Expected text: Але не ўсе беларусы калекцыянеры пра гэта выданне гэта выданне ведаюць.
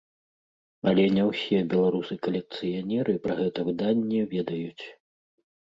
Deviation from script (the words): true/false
true